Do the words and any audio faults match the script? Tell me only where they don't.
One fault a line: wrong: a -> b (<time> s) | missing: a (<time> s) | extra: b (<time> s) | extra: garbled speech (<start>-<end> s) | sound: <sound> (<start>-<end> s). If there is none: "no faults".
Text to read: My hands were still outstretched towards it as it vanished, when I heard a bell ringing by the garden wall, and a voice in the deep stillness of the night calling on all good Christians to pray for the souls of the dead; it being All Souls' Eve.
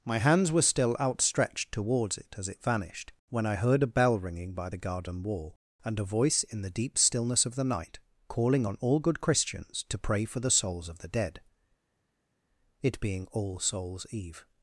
no faults